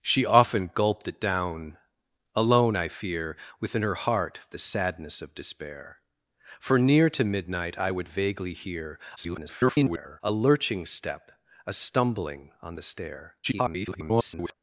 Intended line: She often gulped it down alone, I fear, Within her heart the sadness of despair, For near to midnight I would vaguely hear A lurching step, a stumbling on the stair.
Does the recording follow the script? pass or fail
fail